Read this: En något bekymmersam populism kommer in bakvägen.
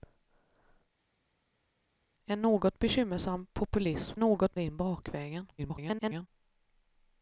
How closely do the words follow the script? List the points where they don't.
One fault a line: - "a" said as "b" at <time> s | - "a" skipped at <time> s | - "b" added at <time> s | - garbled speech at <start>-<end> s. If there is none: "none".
- "kommer" said as "något" at 4.2 s
- garbled speech at 5.6-6.3 s